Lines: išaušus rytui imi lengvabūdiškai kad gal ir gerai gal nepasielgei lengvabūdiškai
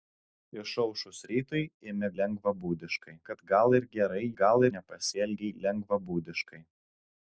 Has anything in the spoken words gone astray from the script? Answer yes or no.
no